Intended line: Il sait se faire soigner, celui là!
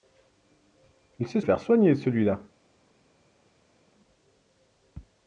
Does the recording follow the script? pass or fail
fail